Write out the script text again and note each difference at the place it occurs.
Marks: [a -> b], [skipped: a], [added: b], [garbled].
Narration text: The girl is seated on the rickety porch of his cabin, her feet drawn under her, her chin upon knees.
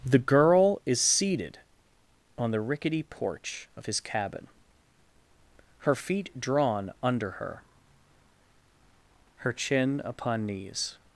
The girl is seated on the rickety porch of his cabin, her feet drawn under her, her chin upon knees.